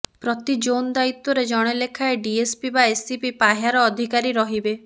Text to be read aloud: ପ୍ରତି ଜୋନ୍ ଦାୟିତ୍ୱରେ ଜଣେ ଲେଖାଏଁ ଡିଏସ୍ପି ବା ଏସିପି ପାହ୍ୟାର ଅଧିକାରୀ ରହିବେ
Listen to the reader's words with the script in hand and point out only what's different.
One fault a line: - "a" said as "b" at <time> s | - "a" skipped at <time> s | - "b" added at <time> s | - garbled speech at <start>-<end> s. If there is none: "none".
none